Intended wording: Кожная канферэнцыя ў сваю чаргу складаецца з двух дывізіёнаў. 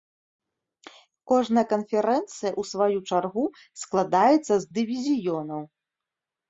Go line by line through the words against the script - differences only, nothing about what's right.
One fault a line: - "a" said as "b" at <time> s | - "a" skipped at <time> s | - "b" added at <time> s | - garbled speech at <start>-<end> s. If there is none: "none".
- "двух" skipped at 4.7 s